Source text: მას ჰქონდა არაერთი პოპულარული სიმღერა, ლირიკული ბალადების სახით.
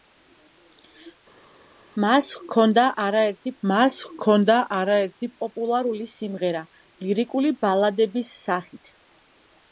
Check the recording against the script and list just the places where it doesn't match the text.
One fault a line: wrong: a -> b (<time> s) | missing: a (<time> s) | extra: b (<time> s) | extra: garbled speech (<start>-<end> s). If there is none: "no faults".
extra: მას ჰქონდა არაერთი (3.7 s)